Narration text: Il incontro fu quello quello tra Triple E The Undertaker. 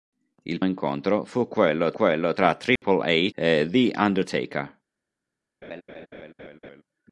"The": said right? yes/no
yes